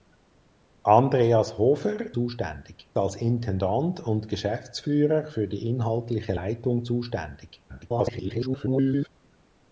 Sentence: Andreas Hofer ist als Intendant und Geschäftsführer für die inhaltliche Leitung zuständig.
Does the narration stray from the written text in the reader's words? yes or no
yes